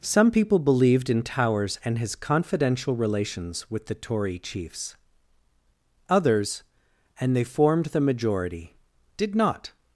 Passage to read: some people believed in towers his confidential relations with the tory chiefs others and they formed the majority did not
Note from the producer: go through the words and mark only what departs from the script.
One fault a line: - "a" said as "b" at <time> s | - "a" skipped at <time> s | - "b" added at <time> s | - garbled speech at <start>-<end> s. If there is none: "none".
- "and" added at 1.9 s